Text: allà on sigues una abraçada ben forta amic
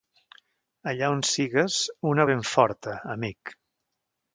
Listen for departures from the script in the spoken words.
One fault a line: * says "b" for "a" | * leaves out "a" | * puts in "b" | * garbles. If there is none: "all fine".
* leaves out "abraçada"